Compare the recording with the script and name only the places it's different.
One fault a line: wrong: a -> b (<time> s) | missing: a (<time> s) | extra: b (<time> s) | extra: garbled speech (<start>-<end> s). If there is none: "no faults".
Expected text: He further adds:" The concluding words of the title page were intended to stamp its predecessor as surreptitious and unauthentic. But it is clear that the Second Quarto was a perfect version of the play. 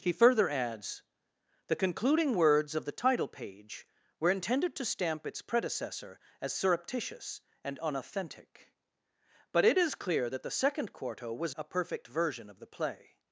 no faults